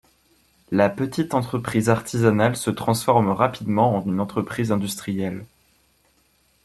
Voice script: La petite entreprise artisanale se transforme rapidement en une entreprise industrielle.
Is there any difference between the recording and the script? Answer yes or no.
no